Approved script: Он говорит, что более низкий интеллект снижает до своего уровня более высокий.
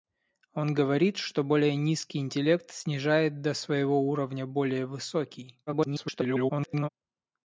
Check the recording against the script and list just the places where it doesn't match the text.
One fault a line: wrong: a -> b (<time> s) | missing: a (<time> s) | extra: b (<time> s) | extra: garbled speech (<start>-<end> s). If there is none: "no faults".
extra: garbled speech (5.7-6.9 s)